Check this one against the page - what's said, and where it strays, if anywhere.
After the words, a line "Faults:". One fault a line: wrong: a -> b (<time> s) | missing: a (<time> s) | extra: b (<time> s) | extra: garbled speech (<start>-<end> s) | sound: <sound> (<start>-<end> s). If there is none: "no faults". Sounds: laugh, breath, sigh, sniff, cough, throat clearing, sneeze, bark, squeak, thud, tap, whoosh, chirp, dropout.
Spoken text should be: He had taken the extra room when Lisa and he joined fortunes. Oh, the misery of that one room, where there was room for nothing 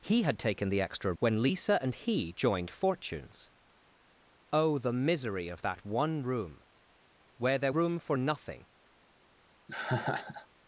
He had taken the extra when Lisa and he joined fortunes. Oh, the misery of that one room, where there room for nothing
Faults:
missing: room (1.1 s)
missing: was (7.7 s)
sound: laugh (9.7-10.5 s)